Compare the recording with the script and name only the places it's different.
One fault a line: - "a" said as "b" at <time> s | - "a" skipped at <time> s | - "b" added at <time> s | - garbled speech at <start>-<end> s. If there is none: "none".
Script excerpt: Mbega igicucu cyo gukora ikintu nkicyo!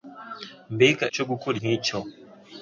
- "igicucu" skipped at 1.1 s
- "ikintu" skipped at 1.5 s